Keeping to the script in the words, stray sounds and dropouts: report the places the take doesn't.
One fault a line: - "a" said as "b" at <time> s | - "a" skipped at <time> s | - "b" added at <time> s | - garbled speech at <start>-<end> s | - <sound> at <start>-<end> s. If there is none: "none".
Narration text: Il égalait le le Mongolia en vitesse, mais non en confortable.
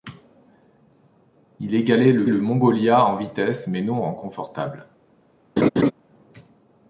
- laugh at 5.6-5.9 s